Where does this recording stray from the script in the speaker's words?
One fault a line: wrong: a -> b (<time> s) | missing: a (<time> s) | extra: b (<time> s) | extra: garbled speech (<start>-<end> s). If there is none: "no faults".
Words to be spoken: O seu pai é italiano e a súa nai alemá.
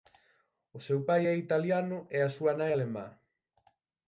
no faults